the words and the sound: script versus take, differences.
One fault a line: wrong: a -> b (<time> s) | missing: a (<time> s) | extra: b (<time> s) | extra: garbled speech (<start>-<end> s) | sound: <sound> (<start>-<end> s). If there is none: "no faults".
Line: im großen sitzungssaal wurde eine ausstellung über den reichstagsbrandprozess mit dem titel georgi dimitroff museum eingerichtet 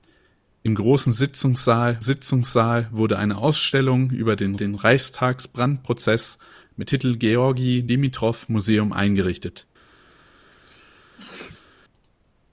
extra: sitzungssaal (2.0 s)
extra: den (4.6 s)
missing: dem (6.9 s)
sound: sneeze (10.5-11.7 s)